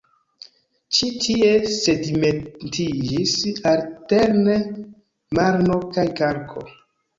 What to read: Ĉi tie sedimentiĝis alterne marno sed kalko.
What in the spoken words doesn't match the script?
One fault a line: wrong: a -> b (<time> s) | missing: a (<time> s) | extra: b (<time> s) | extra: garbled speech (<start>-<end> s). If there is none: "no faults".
wrong: sed -> kaj (6.0 s)